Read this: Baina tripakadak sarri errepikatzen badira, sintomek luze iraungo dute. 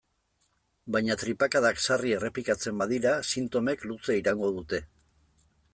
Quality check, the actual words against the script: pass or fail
pass